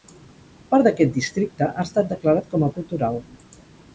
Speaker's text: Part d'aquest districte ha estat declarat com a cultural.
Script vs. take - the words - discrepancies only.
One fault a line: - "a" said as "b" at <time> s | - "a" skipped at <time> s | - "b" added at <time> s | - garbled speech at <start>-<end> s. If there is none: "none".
none